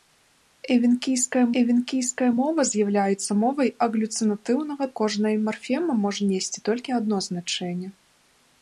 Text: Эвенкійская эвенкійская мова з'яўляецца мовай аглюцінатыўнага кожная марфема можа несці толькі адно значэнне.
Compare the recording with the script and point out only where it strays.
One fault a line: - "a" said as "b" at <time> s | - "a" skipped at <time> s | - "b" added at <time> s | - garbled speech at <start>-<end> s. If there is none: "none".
none